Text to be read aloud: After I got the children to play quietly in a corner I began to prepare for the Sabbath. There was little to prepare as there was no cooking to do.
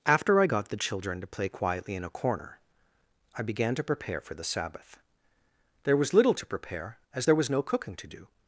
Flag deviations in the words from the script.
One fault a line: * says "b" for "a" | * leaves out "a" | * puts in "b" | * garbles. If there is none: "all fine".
all fine